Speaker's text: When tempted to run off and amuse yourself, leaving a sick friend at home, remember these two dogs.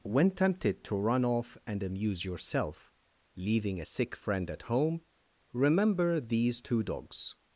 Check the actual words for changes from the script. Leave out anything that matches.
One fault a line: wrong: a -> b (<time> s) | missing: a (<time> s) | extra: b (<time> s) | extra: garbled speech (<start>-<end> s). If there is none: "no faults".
no faults